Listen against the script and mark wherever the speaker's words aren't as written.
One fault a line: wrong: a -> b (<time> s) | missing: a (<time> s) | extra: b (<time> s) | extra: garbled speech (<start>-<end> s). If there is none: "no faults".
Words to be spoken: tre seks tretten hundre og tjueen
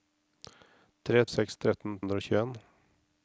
no faults